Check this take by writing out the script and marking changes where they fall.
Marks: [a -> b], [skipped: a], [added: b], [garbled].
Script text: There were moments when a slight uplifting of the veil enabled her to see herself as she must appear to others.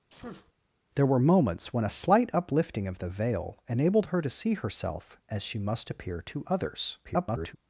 There were moments when a slight uplifting of the veil enabled her to see herself as she must appear to others. [garbled]